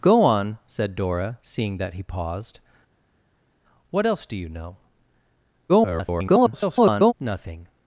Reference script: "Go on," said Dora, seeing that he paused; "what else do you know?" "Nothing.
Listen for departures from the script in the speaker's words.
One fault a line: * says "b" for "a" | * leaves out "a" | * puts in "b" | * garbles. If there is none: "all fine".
* garbles